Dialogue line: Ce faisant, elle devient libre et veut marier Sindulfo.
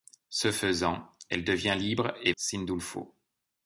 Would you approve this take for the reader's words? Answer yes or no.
no